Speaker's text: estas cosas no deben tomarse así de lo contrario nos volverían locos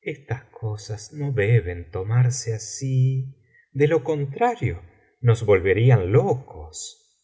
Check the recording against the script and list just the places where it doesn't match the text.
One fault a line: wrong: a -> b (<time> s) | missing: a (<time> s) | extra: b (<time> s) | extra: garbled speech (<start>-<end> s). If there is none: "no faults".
no faults